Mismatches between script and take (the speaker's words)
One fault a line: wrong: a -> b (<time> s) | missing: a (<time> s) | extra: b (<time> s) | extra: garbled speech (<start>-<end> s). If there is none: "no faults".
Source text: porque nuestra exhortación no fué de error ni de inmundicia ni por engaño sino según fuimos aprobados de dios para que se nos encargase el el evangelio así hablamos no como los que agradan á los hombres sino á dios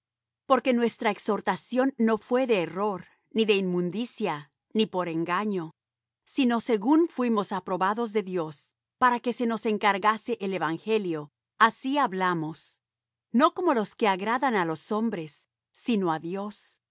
missing: el (10.5 s)